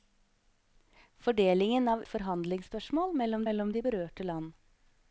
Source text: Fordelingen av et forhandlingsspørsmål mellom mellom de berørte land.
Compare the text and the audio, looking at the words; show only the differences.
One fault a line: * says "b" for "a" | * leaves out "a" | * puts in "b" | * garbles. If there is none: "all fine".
all fine